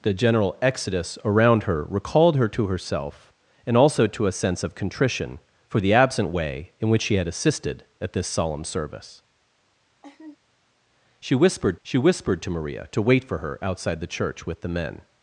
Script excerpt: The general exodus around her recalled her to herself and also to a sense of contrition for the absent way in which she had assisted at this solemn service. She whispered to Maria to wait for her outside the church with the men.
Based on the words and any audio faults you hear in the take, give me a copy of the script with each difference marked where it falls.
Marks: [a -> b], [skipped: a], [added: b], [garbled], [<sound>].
The general exodus around her recalled her to herself and also to a sense of contrition for the absent way in which she had assisted at this solemn service. [laugh] She whispered [added: she whispered] to Maria to wait for her outside the church with the men.